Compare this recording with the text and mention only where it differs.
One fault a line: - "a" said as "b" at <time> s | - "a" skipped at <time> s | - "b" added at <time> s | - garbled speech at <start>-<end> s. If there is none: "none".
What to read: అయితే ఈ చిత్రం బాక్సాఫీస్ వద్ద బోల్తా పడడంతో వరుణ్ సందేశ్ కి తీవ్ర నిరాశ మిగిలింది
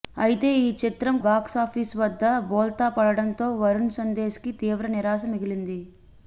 none